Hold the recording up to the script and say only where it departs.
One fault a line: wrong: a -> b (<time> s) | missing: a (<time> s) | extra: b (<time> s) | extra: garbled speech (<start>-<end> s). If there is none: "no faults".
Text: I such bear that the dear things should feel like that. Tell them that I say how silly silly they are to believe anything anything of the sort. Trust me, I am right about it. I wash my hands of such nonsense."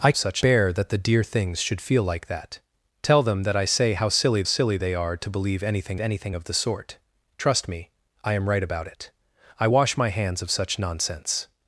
no faults